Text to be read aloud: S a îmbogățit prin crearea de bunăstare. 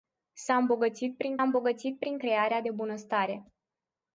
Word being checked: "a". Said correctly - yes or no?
yes